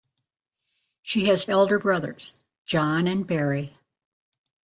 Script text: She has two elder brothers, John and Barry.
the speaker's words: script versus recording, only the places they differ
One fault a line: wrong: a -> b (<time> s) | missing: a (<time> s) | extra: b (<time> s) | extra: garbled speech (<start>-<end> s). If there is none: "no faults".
missing: two (1.4 s)